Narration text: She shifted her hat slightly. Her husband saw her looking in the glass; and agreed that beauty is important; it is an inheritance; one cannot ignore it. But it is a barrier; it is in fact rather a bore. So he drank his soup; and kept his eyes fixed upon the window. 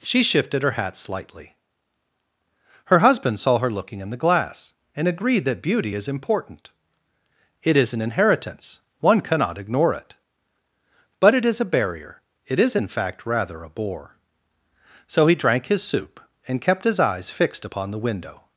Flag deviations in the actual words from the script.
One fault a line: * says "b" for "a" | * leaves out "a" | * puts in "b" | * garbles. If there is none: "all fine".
all fine